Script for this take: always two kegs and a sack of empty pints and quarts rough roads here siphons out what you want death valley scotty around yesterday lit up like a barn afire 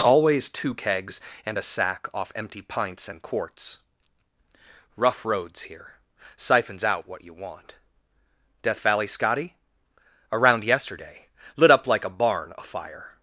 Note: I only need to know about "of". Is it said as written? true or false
false